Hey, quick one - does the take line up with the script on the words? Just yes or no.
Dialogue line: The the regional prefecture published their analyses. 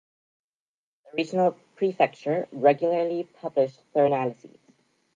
no